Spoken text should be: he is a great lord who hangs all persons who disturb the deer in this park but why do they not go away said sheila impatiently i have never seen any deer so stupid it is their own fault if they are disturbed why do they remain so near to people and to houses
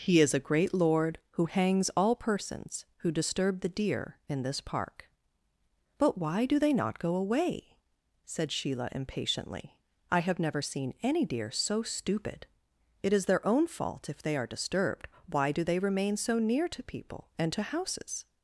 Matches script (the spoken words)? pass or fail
pass